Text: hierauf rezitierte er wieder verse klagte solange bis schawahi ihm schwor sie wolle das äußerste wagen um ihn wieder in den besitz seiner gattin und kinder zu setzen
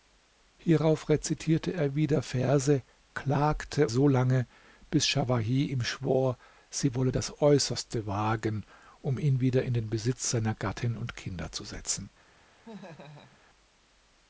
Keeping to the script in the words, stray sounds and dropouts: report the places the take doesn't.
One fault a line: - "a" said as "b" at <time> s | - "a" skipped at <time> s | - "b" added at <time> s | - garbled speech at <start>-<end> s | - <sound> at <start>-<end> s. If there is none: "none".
- laugh at 12.6-13.4 s